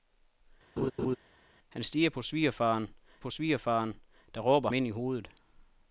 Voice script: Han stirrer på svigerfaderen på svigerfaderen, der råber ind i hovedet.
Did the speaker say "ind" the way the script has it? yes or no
yes